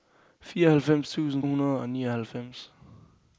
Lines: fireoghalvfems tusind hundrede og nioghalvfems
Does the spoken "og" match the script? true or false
true